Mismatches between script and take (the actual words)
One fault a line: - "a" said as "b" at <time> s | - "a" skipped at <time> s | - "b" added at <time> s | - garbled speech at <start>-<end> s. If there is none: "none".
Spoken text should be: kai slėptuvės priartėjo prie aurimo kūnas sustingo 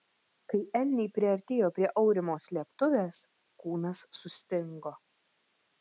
- "slėptuvės" said as "elniai" at 0.8 s
- "slėptuvės" added at 2.5 s